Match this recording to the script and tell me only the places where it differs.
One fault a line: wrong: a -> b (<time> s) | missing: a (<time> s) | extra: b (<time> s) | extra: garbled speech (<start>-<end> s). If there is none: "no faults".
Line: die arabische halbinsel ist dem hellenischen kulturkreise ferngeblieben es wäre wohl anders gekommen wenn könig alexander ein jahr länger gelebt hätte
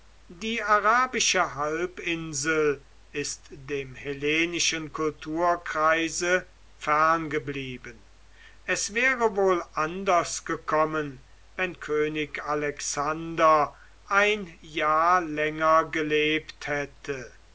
no faults